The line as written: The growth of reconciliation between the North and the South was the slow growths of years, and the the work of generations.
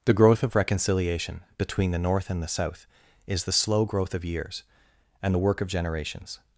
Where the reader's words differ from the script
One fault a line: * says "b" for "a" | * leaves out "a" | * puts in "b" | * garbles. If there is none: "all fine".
* says "is" for "was"
* says "growth" for "growths"
* leaves out "the"